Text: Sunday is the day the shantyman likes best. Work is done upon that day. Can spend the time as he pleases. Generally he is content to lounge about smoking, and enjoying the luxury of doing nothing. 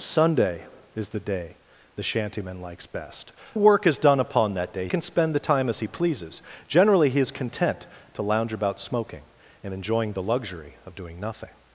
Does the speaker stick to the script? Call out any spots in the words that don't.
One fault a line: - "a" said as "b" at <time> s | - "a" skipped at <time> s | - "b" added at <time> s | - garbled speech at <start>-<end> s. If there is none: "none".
none